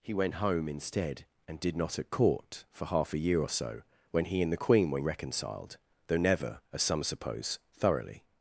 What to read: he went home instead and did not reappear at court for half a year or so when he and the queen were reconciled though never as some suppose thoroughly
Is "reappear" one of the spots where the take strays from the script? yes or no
yes